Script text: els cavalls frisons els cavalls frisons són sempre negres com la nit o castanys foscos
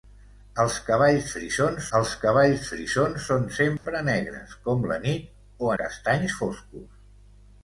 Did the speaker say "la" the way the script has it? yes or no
yes